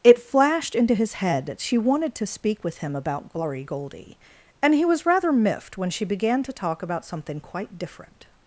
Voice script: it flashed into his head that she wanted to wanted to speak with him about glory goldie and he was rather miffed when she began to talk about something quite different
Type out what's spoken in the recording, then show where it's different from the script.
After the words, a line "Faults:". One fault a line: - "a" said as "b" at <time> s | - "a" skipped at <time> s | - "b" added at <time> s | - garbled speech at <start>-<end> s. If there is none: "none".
it flashed into his head that she wanted to speak with him about glory goldie and he was rather miffed when she began to talk about something quite different
Faults:
- "wanted to" skipped at 2.3 s